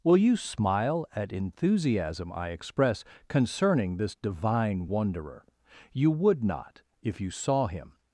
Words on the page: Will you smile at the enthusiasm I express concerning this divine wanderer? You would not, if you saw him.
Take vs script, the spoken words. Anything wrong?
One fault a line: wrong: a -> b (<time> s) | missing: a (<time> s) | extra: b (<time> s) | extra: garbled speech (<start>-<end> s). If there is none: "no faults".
missing: the (1.3 s)